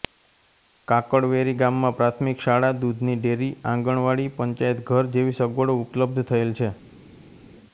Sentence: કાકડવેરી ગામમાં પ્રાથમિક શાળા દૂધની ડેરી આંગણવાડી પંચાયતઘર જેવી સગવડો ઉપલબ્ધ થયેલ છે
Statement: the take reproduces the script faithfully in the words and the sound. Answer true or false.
true